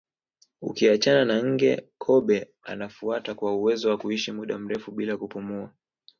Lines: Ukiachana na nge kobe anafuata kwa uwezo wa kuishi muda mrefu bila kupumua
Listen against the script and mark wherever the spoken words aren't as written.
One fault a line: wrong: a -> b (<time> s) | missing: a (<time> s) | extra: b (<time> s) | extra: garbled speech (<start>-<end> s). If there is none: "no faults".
no faults